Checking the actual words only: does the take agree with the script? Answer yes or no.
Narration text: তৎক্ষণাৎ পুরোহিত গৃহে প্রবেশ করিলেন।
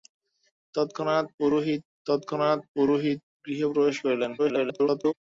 no